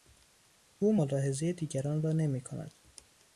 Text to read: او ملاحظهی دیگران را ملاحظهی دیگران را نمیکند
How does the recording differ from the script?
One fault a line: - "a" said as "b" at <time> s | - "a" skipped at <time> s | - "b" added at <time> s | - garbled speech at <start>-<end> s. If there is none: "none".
- "ملاحظهی دیگران را" skipped at 2.1 s